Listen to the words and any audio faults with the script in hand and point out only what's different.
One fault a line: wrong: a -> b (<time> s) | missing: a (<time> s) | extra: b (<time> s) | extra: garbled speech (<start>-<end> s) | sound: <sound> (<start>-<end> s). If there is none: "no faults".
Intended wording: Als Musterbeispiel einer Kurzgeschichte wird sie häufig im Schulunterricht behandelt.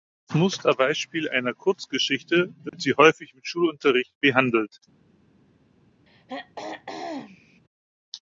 sound: dropout (2.7-2.7 s)
sound: throat clearing (6.1-7.6 s)